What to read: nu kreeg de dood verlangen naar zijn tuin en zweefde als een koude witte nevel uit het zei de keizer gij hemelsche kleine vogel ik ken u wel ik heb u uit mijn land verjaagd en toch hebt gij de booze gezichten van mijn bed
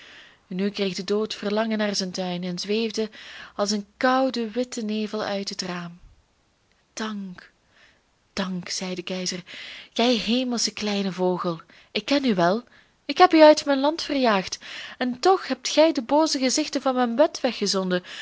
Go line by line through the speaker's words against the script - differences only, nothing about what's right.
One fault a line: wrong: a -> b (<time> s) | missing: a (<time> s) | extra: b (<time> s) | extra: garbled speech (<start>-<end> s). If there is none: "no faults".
extra: raam dank dank (5.6 s)